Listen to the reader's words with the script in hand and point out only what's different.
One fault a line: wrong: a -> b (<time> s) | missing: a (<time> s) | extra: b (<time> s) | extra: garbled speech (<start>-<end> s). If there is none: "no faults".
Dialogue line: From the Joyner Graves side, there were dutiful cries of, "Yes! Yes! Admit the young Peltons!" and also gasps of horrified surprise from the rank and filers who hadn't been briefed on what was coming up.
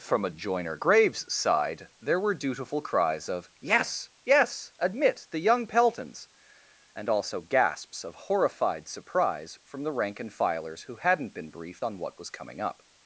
wrong: the -> a (0.2 s)